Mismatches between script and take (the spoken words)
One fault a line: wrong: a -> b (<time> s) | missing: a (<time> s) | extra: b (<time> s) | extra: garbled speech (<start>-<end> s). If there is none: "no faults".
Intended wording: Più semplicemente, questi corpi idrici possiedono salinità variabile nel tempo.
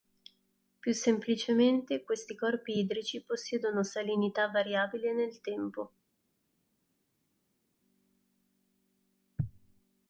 no faults